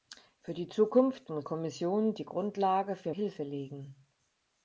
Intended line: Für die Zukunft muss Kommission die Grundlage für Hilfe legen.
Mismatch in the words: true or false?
false